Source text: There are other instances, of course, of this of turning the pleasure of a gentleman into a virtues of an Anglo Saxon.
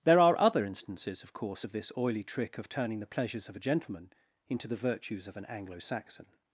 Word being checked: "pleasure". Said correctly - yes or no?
no